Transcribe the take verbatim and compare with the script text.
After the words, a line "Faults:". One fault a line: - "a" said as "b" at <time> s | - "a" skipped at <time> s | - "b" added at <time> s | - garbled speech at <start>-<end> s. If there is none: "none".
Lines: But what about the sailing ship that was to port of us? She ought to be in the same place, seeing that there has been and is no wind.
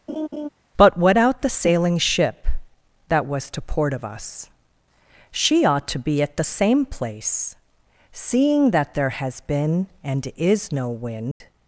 But what out the sailing ship that was to port of us? She ought to be at the same place, seeing that there has been and is no wind.
Faults:
- "about" said as "out" at 1.2 s
- "in" said as "at" at 6.2 s